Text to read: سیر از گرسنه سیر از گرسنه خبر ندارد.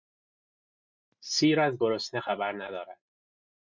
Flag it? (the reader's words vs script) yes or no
yes